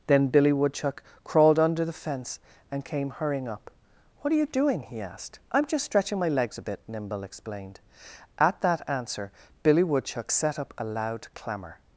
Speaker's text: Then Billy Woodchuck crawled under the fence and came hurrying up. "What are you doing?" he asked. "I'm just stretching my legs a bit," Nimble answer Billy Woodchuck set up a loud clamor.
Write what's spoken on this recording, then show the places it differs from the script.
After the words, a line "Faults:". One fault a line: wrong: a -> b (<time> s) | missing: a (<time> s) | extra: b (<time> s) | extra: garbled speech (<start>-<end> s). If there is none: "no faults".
Then Billy Woodchuck crawled under the fence and came hurrying up. "What are you doing?" he asked. "I'm just stretching my legs a bit," Nimble explained. At that answer Billy Woodchuck set up a loud clamor.
Faults:
extra: explained At that (7.2 s)